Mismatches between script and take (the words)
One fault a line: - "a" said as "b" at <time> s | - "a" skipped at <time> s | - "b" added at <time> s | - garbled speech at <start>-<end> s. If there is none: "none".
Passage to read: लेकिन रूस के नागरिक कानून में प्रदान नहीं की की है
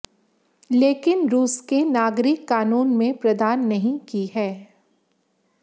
- "की" skipped at 4.2 s